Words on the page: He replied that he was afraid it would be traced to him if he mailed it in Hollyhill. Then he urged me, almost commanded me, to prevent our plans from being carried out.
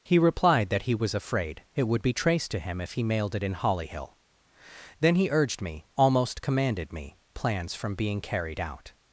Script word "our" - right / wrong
wrong